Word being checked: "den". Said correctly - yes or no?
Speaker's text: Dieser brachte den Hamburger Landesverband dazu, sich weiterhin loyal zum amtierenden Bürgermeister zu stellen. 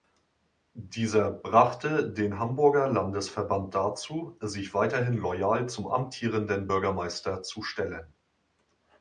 yes